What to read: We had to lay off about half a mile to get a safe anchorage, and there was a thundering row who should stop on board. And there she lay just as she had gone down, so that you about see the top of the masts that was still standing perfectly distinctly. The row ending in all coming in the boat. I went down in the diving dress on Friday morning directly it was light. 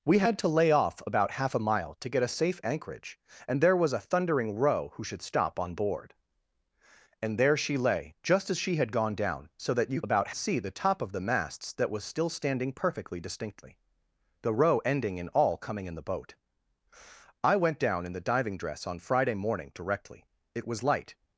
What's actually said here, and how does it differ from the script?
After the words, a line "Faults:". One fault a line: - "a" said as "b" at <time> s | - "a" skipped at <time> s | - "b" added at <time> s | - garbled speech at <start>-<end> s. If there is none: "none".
We had to lay off about half a mile to get a safe anchorage, and there was a thundering row who should stop on board. And there she lay just as she had gone down, so that you about see the top of the masts that was still standing perfectly distinctly. The row ending in all coming in the boat. I went down in the diving dress on Friday morning directly it was light.
Faults:
none